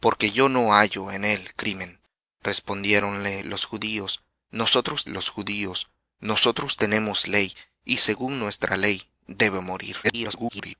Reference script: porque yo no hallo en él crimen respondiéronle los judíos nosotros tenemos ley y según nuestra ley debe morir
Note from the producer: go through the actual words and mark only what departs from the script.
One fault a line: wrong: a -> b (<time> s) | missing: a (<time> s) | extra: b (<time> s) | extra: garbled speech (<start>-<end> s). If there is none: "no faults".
extra: los judíos nosotros (5.1 s)
extra: garbled speech (10.0-10.7 s)